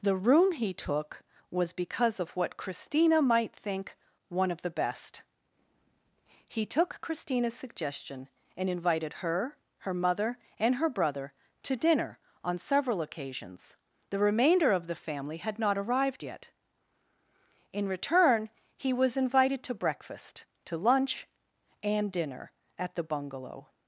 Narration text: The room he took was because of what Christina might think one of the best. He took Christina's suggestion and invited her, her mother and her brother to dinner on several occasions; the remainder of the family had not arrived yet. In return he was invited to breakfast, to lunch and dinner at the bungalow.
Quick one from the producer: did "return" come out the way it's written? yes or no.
yes